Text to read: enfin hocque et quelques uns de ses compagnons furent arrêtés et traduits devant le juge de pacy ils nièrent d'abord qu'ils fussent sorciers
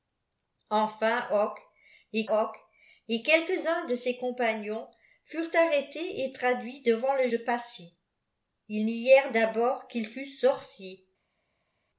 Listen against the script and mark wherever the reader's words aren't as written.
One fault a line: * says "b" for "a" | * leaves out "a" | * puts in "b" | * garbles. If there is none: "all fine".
* puts in "hocque et"
* leaves out "juge"